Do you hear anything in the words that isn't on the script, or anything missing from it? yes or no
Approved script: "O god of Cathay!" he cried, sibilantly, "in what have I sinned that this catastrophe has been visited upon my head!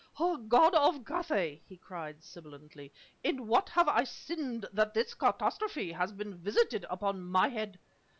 no